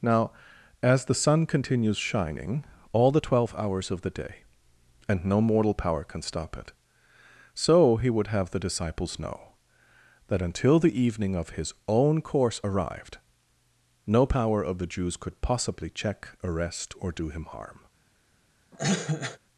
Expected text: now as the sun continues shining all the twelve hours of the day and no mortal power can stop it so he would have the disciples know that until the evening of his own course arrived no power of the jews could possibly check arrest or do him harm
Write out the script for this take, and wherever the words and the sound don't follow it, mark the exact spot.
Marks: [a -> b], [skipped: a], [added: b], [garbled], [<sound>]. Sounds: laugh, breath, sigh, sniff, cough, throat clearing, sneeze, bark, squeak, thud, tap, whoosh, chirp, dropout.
now as the sun continues shining all the twelve hours of the day and no mortal power can stop it so he would have the disciples know that until the evening of his own course arrived no power of the jews could possibly check arrest or do him harm [cough]